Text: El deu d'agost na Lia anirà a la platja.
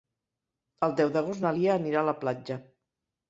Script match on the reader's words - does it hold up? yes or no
yes